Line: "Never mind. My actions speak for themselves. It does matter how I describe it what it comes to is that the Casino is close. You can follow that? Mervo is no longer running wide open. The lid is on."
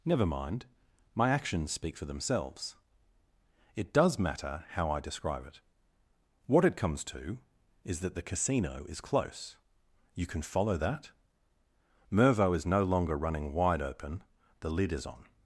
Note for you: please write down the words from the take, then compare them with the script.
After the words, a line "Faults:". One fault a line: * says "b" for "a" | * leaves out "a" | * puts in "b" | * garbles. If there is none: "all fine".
"Never mind. My actions speak for themselves. It does matter how I describe it what it comes to is that the Casino is close. You can follow that? Mervo is no longer running wide open. The lid is on."
Faults:
all fine